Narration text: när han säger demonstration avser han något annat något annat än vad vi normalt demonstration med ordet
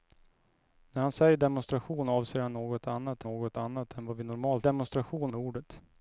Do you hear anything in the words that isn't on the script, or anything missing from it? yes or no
no